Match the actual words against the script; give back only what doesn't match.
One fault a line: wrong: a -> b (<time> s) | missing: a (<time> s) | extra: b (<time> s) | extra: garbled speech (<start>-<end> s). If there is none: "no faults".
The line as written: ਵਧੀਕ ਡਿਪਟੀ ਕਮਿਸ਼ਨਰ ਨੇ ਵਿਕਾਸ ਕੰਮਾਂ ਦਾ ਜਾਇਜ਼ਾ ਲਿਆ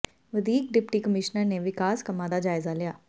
no faults